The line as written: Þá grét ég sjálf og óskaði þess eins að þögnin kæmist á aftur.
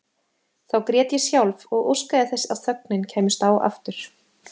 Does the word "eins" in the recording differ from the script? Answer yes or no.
yes